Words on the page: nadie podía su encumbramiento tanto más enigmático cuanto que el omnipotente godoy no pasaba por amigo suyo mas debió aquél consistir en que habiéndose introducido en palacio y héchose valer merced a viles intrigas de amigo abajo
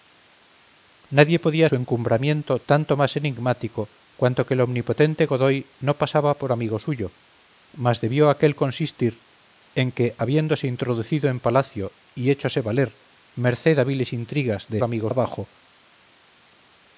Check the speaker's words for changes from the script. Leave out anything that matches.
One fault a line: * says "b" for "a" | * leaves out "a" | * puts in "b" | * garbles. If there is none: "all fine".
all fine